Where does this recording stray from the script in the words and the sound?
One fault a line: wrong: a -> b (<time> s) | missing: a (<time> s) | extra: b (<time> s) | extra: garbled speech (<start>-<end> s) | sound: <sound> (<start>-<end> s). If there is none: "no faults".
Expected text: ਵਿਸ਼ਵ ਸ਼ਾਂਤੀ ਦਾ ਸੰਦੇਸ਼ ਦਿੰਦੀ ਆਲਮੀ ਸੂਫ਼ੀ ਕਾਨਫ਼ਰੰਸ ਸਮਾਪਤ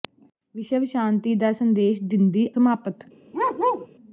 missing: ਆਲਮੀ ਸੂਫ਼ੀ ਕਾਨਫ਼ਰੰਸ (2.5 s)
sound: bark (3.3-3.9 s)